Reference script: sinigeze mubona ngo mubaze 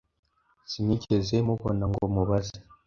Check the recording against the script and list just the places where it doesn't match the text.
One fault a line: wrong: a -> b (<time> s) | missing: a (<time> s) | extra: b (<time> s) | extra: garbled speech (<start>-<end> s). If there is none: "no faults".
no faults